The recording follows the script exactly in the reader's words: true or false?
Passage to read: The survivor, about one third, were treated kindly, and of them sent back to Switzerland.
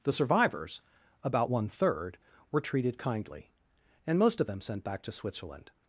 false